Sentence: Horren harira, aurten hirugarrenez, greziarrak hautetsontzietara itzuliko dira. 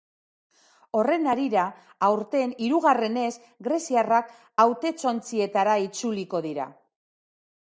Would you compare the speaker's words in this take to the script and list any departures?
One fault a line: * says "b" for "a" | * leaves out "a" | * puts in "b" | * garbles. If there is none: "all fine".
all fine